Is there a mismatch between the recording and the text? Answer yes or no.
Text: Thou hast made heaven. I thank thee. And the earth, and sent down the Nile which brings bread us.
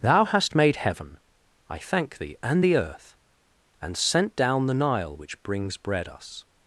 no